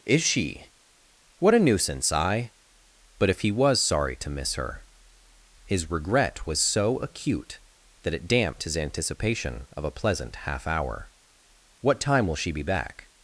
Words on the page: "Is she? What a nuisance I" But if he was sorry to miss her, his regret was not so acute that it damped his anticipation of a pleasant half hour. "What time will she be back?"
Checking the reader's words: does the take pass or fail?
fail